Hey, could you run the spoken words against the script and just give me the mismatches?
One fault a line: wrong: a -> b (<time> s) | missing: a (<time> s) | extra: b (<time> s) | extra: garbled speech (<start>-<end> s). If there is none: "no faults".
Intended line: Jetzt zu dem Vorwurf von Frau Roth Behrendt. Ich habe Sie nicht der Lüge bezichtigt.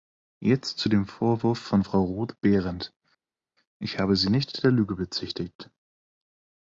no faults